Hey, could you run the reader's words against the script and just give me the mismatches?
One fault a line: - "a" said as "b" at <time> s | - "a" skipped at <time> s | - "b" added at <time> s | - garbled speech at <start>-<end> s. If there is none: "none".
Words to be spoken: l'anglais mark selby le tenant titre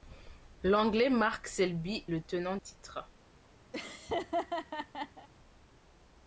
none